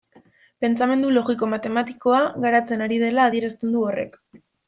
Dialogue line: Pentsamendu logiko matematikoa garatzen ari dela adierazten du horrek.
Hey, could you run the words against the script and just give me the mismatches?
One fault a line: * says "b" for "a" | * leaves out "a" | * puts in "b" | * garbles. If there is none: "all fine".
all fine